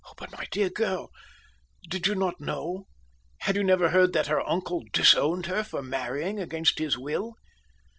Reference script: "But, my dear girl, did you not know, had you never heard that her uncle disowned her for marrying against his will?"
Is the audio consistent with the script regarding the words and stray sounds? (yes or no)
yes